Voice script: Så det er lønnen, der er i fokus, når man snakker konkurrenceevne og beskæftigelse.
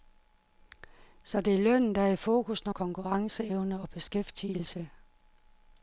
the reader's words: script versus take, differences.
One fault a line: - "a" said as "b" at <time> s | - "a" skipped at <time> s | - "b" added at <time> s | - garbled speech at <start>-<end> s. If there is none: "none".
- "man snakker" skipped at 2.7 s